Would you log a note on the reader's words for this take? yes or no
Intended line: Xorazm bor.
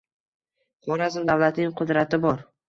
yes